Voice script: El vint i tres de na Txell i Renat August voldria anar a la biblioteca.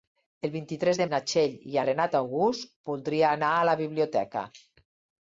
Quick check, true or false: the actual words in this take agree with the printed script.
true